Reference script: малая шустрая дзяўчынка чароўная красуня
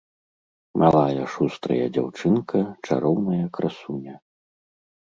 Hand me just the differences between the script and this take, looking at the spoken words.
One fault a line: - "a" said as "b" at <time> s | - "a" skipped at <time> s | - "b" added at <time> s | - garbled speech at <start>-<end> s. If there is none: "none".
none